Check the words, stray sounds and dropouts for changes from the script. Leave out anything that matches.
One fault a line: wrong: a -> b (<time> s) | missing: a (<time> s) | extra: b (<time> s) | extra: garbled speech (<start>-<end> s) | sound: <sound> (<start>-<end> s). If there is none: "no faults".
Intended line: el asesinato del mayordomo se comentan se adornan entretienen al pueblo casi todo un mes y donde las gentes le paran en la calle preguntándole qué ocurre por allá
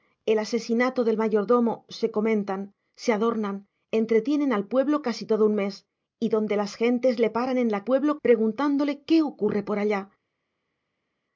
wrong: calle -> pueblo (7.8 s)